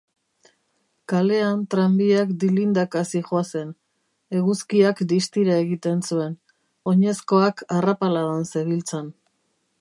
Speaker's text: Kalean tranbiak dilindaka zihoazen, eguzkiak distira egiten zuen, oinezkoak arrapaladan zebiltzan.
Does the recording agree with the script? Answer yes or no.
yes